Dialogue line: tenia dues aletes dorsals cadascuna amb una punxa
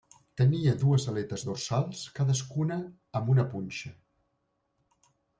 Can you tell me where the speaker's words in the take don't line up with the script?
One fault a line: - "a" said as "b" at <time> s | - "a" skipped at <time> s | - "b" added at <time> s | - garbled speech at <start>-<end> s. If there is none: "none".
none